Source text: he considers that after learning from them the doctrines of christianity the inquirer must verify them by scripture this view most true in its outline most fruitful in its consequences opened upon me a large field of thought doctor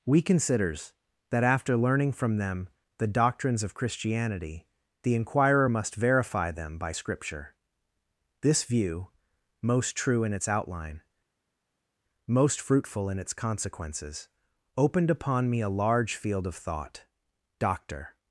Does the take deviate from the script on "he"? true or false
true